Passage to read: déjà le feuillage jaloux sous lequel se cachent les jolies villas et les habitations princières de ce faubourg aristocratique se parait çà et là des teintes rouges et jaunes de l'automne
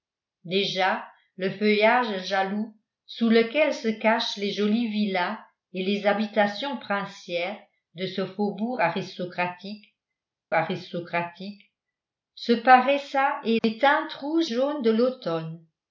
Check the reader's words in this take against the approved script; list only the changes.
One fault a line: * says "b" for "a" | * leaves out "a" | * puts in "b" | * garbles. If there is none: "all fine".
* puts in "aristocratique"
* leaves out "là"
* leaves out "et"